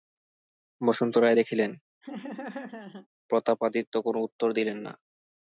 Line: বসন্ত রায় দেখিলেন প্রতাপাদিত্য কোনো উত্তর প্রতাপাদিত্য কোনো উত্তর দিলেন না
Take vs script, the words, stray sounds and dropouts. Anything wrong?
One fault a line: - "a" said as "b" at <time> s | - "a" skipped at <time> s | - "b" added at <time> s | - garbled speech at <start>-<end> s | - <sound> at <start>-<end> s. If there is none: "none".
- laugh at 2.0-3.1 s
- "প্রতাপাদিত্য কোনো উত্তর" skipped at 4.5 s